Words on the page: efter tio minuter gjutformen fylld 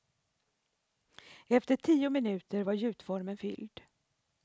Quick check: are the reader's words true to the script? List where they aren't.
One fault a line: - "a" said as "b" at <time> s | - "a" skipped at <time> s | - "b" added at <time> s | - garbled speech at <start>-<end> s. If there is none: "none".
- "var" added at 2.6 s